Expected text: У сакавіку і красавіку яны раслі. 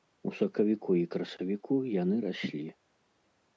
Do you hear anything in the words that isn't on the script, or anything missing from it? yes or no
no